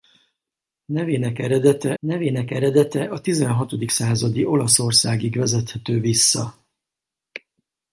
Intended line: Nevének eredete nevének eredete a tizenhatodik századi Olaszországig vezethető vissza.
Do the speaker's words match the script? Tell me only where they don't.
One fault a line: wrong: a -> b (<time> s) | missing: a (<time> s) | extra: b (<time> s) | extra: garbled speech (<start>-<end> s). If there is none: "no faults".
no faults